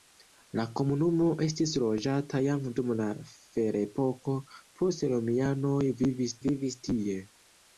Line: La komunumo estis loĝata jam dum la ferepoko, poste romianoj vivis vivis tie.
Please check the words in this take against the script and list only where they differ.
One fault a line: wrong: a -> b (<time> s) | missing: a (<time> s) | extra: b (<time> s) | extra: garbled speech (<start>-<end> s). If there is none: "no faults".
no faults